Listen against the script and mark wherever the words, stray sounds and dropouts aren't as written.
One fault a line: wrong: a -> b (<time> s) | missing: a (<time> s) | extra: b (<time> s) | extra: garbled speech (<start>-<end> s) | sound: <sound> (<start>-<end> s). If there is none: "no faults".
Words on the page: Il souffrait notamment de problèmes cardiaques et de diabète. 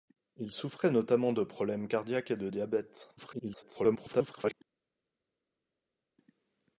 extra: garbled speech (3.2-4.5 s)